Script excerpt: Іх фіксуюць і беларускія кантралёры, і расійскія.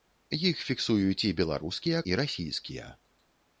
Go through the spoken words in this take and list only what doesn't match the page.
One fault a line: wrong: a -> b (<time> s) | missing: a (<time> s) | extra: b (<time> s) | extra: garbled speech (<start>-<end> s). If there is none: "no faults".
missing: кантралёры (2.0 s)